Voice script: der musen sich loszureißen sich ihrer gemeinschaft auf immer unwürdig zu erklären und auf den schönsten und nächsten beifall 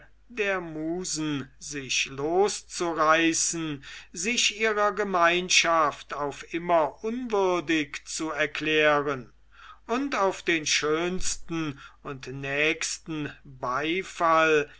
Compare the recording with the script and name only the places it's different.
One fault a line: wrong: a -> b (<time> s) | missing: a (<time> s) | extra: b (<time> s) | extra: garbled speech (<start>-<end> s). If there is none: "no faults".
no faults